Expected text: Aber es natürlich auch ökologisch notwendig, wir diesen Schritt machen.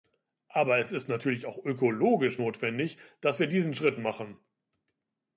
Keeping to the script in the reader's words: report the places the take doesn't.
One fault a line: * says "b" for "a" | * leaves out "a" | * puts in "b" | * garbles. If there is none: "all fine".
* puts in "ist"
* puts in "dass"